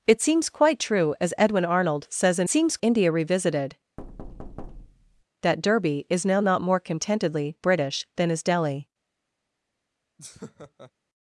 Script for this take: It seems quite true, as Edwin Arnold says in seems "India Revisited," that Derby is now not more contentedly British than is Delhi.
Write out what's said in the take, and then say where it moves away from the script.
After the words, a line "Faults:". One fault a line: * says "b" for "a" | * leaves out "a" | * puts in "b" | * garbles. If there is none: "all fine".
It seems quite true, as Edwin Arnold says in seems "India Revisited," that Derby is now not more contentedly British than is Delhi.
Faults:
all fine